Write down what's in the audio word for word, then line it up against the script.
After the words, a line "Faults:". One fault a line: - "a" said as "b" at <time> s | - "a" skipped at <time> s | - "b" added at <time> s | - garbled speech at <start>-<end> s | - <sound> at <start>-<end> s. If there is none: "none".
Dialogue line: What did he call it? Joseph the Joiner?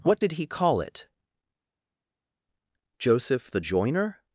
What did he call it? Joseph the Joiner?
Faults:
none